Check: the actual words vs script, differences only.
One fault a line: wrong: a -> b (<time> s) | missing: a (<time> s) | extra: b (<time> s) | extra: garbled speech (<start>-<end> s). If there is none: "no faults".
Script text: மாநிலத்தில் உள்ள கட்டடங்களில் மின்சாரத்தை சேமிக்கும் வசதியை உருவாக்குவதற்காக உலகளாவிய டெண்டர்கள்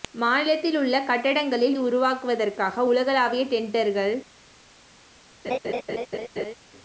missing: மின்சாரத்தை சேமிக்கும் வசதியை (1.8 s)